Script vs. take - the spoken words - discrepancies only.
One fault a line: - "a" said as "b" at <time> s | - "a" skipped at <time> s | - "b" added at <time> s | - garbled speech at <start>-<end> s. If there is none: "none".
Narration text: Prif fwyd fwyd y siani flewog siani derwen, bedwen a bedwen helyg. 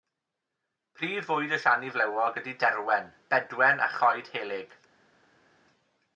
- "fwyd" skipped at 1.5 s
- "siani" said as "ydy" at 2.4 s
- "bedwen" said as "choed" at 3.9 s